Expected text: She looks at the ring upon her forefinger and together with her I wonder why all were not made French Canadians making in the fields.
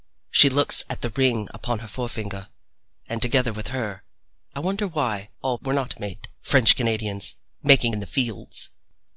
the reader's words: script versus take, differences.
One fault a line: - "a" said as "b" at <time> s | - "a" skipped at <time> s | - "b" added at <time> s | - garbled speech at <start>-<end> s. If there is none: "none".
none